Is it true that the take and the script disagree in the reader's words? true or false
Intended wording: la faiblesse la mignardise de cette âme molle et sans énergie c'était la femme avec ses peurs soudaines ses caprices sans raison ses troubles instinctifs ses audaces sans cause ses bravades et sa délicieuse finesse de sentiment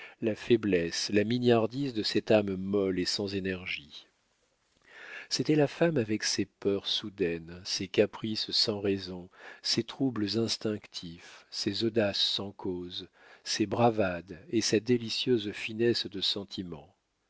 false